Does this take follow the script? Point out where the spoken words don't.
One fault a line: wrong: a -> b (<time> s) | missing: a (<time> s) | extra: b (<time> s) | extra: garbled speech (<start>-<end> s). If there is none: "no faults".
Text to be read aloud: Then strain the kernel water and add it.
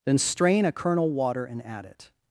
wrong: the -> a (0.7 s)